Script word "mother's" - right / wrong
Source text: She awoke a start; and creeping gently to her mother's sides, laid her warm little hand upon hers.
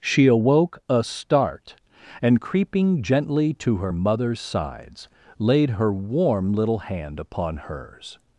right